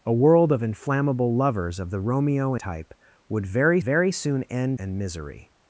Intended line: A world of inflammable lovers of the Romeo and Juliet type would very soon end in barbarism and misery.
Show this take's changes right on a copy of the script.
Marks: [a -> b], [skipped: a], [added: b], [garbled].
A world of inflammable lovers of the Romeo [skipped: and Juliet] type would very [added: very] soon end [skipped: in barbarism] and misery.